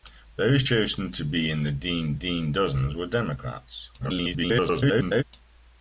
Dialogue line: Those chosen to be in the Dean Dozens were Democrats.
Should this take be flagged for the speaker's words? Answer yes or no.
yes